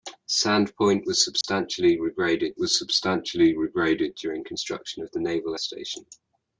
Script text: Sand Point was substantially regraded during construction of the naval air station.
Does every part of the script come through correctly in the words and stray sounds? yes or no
no